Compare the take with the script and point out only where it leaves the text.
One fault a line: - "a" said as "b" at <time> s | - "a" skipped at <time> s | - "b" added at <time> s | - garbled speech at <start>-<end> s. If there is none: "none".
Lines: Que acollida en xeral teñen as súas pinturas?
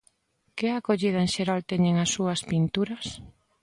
none